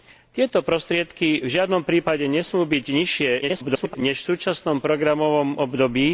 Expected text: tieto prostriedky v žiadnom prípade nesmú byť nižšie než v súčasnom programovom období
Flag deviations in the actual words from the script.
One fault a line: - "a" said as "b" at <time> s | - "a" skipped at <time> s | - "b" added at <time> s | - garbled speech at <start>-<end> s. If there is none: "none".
- garbled speech at 3.4-4.0 s